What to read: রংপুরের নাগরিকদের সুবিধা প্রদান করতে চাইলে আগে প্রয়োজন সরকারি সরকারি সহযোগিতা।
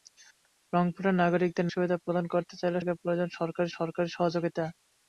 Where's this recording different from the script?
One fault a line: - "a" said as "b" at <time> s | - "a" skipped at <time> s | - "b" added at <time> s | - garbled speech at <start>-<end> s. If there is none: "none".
none